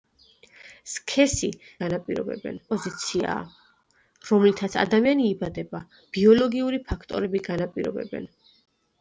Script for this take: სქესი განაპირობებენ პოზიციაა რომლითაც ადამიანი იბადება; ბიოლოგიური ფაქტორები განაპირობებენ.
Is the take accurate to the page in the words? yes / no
yes